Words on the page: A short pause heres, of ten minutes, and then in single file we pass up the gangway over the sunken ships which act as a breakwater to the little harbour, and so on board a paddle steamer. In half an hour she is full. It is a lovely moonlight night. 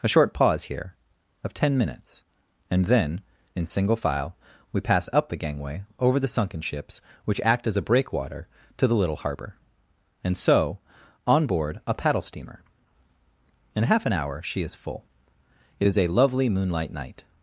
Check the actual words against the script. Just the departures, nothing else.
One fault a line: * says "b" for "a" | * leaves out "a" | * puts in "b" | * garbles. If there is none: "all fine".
* says "here" for "heres"